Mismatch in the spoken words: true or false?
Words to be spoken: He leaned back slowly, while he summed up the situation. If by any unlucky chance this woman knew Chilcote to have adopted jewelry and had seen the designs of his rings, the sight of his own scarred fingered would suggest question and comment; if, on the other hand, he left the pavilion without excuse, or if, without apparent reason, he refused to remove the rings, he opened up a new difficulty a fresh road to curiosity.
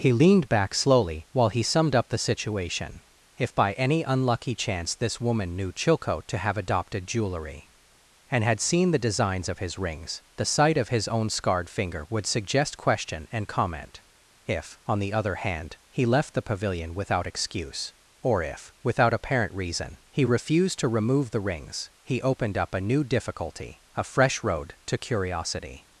true